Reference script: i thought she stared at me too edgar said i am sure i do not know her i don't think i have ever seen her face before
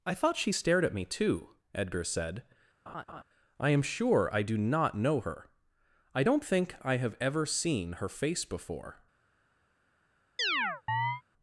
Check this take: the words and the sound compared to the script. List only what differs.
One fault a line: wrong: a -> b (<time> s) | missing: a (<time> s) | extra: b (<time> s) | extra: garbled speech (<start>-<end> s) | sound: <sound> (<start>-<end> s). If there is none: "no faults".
sound: laugh (2.9-3.2 s)
sound: chirp (10.4-11.2 s)